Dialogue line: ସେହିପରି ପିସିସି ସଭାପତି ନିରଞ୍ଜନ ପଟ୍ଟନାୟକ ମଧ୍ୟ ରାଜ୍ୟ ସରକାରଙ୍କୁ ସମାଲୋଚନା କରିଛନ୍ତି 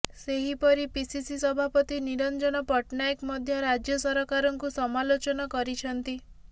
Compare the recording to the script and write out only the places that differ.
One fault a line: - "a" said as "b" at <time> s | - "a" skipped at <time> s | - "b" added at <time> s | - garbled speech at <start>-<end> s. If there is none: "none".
none